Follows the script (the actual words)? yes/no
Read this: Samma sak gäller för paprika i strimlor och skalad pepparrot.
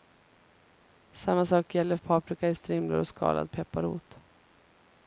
no